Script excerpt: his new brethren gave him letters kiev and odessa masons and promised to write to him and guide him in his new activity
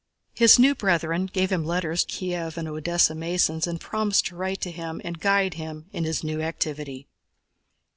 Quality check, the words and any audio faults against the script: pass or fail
pass